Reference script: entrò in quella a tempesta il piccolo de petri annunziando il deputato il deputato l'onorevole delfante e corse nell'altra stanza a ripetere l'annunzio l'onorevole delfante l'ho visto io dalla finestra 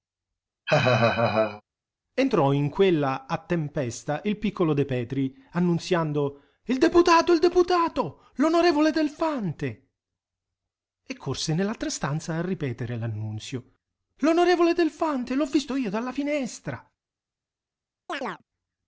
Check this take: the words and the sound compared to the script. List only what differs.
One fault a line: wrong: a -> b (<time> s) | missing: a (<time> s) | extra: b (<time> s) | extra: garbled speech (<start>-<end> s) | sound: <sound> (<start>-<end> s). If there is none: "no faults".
sound: laugh (0.7-1.6 s)
sound: chirp (18.1-18.4 s)